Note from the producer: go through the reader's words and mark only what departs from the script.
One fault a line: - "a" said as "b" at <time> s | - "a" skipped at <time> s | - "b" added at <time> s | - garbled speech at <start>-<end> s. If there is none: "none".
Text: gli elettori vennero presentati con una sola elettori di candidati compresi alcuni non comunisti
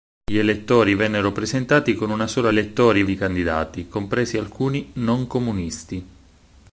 none